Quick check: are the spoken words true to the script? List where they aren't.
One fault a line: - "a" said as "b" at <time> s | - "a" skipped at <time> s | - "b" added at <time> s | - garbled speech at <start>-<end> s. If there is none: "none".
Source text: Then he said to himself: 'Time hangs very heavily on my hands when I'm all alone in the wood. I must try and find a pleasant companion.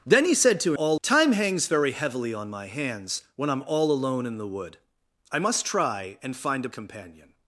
- "himself" said as "all" at 0.7 s
- "pleasant" skipped at 6.7 s